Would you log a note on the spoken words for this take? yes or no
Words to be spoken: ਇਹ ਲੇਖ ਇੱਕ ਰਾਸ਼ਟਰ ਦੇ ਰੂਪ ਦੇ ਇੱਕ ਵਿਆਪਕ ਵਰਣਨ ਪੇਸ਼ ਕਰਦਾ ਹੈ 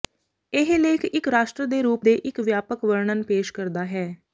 no